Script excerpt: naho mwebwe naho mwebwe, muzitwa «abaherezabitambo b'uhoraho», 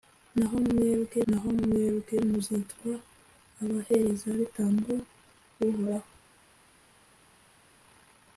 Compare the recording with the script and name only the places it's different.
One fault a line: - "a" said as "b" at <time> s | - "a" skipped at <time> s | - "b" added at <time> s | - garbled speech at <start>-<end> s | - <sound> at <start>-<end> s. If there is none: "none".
none